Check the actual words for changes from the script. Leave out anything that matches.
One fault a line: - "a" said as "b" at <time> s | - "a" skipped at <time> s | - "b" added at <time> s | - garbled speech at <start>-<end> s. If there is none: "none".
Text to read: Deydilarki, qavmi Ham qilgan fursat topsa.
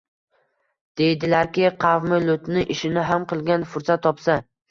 - "Lutni ishini" added at 2.2 s